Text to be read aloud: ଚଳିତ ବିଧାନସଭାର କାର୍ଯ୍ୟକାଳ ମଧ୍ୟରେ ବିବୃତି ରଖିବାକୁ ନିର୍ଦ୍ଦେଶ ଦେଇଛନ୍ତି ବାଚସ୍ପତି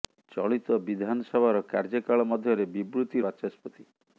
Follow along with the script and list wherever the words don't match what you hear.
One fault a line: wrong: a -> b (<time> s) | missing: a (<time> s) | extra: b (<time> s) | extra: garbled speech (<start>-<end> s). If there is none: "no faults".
missing: ରଖିବାକୁ ନିର୍ଦ୍ଦେଶ ଦେଇଛନ୍ତି (3.2 s)